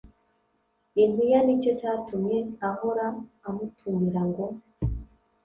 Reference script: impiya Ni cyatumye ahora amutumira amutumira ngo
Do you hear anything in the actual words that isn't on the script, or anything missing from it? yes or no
yes